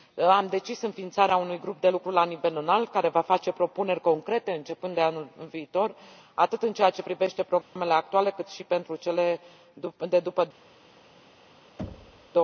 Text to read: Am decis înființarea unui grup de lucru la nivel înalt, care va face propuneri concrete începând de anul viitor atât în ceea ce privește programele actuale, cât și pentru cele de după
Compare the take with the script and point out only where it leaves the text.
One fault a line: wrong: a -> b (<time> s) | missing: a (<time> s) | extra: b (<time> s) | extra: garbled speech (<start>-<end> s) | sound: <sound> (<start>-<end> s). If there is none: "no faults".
sound: dropout (7.6-7.8 s)
sound: thud (11.8-12.3 s)